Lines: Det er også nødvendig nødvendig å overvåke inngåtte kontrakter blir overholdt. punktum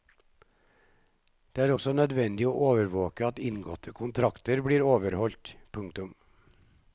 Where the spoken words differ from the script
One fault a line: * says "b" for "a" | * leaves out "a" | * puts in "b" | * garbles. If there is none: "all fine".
* leaves out "nødvendig"
* puts in "at"